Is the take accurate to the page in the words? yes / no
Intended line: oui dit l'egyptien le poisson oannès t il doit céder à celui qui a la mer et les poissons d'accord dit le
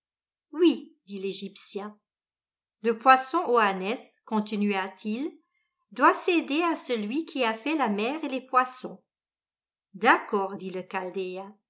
no